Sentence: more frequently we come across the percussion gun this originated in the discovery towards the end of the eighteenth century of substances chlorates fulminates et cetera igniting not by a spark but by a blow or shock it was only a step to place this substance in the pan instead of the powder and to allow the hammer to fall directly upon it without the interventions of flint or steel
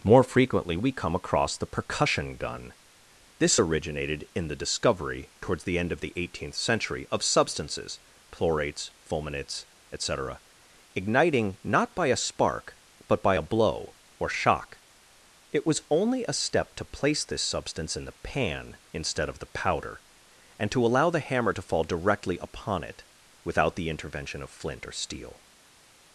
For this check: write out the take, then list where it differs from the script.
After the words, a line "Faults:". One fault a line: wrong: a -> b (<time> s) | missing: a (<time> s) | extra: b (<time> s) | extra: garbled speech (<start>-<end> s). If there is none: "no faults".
more frequently we come across the percussion gun this originated in the discovery towards the end of the eighteenth century of substances chlorates fulminates et cetera igniting not by a spark but by a blow or shock it was only a step to place this substance in the pan instead of the powder and to allow the hammer to fall directly upon it without the intervention of flint or steel
Faults:
wrong: interventions -> intervention (23.9 s)